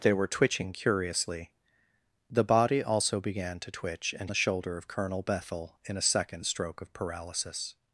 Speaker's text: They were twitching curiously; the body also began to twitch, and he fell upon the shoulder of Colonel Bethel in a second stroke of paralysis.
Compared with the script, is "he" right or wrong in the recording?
wrong